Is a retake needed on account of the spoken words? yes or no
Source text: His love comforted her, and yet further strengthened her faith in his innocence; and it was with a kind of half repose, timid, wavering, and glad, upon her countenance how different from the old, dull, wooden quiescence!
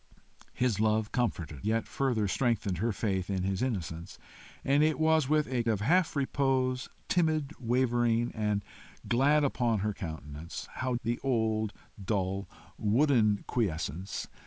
yes